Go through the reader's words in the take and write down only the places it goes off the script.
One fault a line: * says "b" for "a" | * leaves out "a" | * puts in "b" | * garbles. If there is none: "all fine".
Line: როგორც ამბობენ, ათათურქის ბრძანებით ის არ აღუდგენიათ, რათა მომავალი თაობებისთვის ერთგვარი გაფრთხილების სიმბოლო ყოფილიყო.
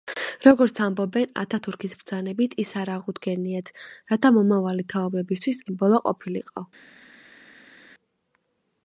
* leaves out "ერთგვარი გაფრთხილების"